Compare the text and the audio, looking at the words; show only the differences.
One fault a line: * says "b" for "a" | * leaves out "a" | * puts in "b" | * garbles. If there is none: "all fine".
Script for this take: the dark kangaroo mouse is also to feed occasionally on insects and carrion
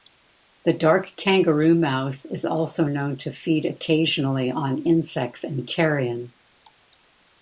* puts in "known"